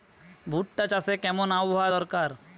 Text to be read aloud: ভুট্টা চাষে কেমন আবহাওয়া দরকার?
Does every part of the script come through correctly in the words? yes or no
yes